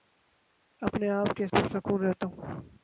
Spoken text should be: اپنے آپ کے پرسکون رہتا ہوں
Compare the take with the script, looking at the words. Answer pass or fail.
pass